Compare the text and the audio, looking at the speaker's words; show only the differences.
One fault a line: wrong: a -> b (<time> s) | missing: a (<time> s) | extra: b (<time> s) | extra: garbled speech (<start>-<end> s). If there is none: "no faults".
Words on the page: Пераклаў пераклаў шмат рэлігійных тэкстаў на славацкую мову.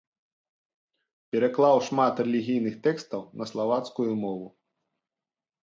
missing: пераклаў (1.8 s)